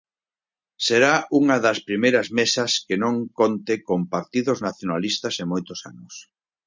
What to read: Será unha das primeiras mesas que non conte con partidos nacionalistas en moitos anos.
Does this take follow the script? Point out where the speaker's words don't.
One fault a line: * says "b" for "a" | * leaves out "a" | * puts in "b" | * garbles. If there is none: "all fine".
all fine